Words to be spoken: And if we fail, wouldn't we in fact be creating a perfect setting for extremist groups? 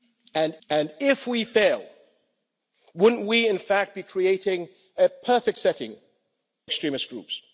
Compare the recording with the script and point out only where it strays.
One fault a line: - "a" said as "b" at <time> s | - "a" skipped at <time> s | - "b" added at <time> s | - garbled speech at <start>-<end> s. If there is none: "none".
- "and" added at 0.7 s
- "for" skipped at 5.9 s